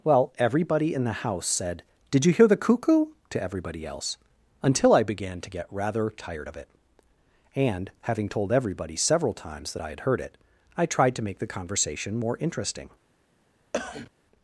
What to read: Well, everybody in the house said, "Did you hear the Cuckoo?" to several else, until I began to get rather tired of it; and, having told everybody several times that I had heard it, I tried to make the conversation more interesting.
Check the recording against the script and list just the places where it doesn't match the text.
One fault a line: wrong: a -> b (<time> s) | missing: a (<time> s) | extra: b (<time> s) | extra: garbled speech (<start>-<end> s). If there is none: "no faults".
wrong: several -> everybody (3.4 s)